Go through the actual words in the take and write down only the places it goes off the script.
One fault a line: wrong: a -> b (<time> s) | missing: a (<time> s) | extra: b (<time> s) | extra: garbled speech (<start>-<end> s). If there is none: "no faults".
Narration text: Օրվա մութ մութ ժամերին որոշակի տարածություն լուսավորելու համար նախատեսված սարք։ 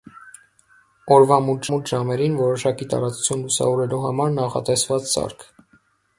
no faults